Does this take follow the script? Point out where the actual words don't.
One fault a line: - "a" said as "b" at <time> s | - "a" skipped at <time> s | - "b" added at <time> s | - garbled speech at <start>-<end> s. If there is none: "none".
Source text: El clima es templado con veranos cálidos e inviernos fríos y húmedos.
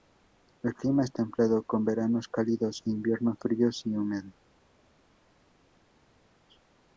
none